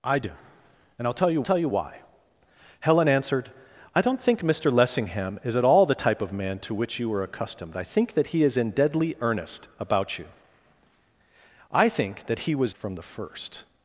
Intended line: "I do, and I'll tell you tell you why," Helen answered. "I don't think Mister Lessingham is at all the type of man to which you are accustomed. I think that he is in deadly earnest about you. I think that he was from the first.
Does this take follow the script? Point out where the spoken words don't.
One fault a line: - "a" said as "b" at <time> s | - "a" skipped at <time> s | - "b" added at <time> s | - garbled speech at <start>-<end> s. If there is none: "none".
none